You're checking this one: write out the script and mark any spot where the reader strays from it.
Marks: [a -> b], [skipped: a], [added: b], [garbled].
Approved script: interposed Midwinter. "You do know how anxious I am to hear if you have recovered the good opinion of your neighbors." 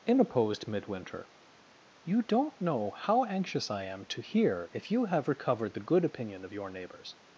interposed Midwinter. "You [do -> don't] know how anxious I am to hear if you have recovered the good opinion of your neighbors."